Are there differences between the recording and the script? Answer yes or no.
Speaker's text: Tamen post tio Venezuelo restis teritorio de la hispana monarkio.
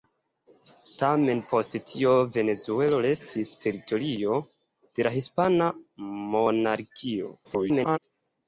yes